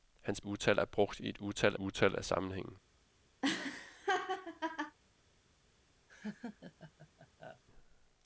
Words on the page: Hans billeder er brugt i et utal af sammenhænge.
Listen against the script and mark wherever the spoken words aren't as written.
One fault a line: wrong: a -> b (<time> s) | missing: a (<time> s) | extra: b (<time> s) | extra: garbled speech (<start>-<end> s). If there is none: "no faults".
wrong: billeder -> utal (0.4 s)
extra: utal (1.8 s)